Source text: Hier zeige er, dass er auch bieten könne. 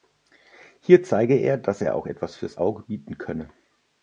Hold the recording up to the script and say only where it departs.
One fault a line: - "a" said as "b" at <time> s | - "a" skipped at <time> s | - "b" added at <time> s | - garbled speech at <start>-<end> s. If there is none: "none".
- "etwas fürs Auge" added at 2.1 s